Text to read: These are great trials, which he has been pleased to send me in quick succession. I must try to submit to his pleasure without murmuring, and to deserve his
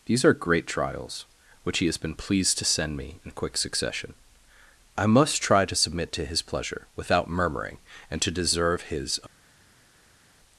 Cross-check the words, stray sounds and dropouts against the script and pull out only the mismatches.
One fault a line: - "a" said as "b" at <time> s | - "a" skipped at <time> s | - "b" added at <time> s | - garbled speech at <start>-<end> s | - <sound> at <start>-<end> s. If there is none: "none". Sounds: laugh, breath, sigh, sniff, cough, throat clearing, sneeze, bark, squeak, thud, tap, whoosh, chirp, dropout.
none